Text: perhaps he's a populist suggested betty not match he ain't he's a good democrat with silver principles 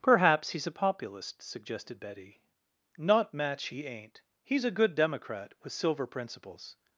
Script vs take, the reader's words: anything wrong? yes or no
no